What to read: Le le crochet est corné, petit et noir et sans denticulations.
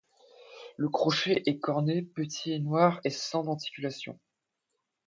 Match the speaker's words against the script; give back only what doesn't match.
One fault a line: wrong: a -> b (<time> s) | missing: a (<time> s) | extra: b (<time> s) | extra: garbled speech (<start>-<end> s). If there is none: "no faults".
missing: le (0.9 s)